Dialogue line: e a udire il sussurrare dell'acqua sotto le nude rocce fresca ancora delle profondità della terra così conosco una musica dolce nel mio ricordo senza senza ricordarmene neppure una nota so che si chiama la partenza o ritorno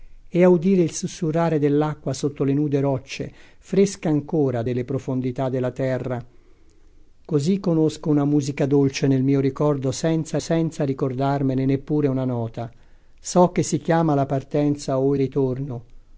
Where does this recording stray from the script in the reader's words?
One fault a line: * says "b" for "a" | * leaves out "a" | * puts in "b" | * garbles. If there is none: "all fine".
all fine